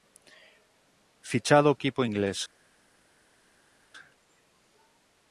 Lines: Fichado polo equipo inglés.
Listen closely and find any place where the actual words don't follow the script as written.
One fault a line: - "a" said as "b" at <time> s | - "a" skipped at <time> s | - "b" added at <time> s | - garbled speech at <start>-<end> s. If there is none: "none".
- "polo" skipped at 1.7 s